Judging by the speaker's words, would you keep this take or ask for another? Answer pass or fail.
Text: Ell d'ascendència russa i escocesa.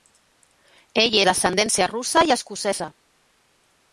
pass